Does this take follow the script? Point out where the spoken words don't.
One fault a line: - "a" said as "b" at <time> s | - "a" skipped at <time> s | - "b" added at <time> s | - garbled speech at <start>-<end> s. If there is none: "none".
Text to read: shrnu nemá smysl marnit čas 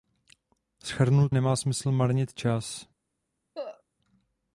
none